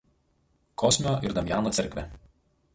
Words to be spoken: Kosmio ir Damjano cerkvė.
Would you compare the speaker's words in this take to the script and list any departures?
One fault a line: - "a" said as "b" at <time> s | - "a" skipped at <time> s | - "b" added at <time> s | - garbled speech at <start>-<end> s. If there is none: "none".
none